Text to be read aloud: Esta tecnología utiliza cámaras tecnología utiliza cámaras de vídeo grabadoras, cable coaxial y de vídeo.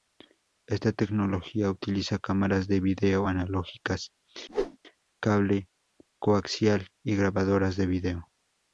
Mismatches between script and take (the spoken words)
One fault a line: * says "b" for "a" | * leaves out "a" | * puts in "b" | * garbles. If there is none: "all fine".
* leaves out "tecnología utiliza cámaras"
* says "analógicas" for "grabadoras"
* puts in "grabadoras"